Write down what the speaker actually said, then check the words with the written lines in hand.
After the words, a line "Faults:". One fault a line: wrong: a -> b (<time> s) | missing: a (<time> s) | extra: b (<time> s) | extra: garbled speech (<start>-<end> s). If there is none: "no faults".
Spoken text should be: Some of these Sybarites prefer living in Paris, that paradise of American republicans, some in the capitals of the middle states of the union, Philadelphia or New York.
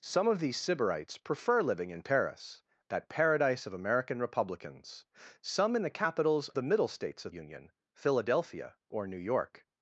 Some of these Sybarites prefer living in Paris, that paradise of American republicans, some in the capitals the middle states of union, Philadelphia or New York.
Faults:
missing: of (6.5 s)
missing: the (7.3 s)